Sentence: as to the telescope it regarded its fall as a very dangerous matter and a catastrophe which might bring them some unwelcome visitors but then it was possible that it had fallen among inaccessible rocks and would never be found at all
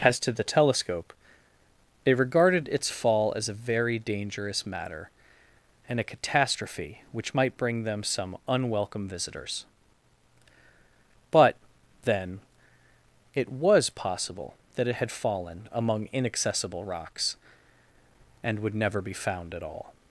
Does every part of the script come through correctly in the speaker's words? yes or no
yes